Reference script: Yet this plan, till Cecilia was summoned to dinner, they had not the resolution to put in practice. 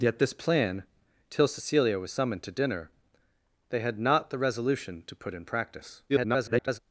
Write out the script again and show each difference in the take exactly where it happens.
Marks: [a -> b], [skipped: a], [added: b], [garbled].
Yet this plan, till Cecilia was summoned to dinner, they had not the resolution to put in practice. [garbled]